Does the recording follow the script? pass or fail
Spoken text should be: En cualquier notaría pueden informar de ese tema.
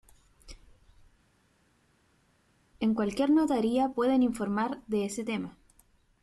pass